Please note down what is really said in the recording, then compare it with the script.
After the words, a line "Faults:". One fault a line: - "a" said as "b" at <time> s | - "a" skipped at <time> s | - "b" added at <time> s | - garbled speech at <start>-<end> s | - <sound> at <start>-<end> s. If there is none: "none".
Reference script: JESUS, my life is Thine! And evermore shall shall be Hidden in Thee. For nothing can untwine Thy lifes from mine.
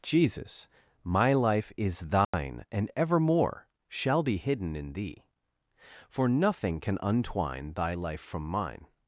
JESUS, my life is Thine! And evermore shall be Hidden in Thee. For nothing can untwine Thy life from mine.
Faults:
- dropout at 2.2-2.3 s
- "shall" skipped at 4.2 s
- "lifes" said as "life" at 7.9 s